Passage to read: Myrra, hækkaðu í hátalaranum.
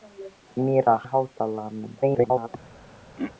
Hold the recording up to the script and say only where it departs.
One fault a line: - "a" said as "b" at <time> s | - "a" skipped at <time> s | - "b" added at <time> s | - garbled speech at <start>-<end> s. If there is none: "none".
- "hækkaðu" skipped at 0.9 s
- garbled speech at 2.0-2.5 s